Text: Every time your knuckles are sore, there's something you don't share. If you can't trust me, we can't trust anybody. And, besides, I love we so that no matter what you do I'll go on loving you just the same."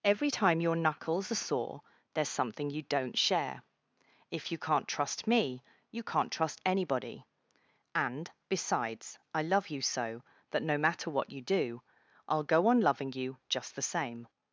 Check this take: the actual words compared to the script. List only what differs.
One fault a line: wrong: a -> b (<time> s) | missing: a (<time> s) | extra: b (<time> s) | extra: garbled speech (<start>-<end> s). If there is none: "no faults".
wrong: we -> you (5.9 s)
wrong: we -> you (9.7 s)